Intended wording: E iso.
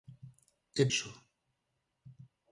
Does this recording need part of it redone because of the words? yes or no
no